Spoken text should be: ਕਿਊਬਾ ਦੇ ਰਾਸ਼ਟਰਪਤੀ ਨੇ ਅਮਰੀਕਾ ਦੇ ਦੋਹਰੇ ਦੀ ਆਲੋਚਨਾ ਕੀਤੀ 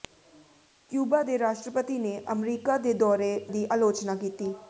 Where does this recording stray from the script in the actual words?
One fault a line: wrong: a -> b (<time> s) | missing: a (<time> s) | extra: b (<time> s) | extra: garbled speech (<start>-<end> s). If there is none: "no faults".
no faults